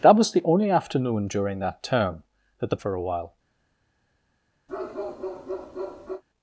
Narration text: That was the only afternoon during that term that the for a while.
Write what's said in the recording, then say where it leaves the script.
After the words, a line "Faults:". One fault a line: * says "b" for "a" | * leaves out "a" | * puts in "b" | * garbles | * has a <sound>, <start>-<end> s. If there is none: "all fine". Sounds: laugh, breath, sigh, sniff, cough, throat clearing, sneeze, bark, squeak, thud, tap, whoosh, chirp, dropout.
That was the only afternoon during that term that the for a while.
Faults:
* has a bark, 4.7-6.2 s